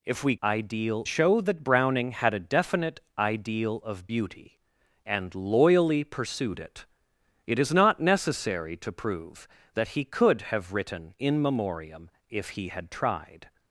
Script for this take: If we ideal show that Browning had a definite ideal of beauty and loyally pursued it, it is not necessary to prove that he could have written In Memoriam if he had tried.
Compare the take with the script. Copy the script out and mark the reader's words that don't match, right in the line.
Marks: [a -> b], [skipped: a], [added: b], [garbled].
If we ideal show that Browning had a definite ideal of beauty and loyally pursued it, it is not necessary to prove that he could have written In Memoriam if he had tried.